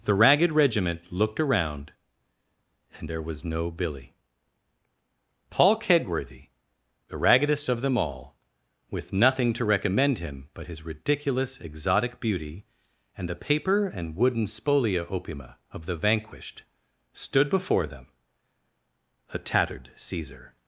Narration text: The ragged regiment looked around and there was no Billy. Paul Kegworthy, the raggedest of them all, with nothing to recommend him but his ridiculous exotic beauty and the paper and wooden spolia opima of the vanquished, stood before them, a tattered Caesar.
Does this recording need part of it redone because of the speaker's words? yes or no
no